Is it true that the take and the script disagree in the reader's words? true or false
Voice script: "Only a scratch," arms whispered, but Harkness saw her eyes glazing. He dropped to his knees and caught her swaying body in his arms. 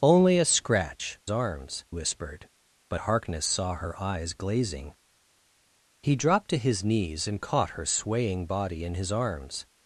false